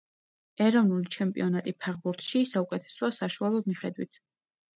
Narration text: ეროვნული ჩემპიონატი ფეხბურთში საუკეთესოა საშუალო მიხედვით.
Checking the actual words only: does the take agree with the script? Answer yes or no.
yes